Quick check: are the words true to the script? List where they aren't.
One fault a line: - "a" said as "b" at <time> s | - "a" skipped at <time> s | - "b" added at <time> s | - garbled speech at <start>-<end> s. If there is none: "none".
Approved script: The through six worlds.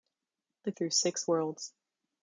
none